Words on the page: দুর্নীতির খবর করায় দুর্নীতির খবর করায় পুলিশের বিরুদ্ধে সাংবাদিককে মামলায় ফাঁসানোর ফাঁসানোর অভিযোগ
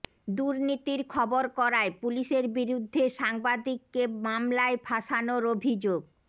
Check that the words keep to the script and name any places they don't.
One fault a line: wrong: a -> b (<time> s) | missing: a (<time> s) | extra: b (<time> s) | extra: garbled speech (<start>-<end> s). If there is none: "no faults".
missing: দুর্নীতির খবর করায় (1.9 s)
missing: ফাঁসানোর (5.4 s)